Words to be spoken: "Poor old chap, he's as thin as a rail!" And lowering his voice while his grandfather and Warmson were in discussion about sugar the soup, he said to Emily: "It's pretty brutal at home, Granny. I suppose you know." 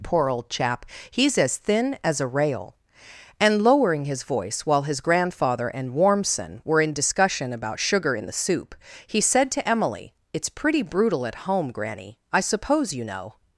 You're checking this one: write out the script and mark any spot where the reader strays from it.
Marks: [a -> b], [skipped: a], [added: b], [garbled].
"Poor old chap, he's as thin as a rail!" And lowering his voice while his grandfather and Warmson were in discussion about sugar [added: in] the soup, he said to Emily: "It's pretty brutal at home, Granny. I suppose you know."